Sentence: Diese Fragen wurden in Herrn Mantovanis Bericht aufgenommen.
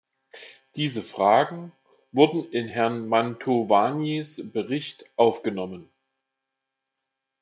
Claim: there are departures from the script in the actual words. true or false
false